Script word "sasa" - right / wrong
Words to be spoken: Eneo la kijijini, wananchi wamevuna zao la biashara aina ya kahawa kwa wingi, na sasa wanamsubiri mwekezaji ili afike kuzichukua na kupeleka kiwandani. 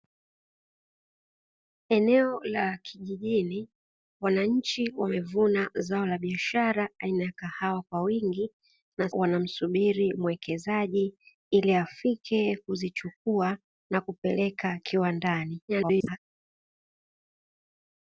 wrong